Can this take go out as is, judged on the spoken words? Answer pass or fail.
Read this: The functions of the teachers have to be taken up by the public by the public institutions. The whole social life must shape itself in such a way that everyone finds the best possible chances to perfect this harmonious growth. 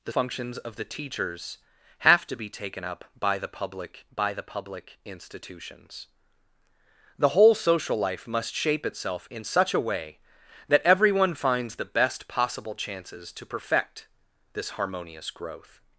pass